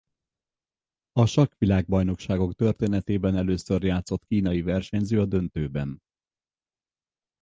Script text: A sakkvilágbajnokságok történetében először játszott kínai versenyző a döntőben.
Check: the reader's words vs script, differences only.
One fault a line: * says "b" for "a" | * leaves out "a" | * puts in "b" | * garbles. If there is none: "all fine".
all fine